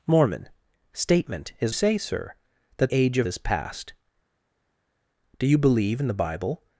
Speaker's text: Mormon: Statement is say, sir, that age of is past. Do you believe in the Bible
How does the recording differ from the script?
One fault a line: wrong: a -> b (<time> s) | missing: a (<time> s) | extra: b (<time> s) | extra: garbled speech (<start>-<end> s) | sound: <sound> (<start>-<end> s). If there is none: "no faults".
no faults